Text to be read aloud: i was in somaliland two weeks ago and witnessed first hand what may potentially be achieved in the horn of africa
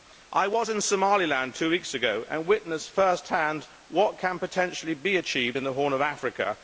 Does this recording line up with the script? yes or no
no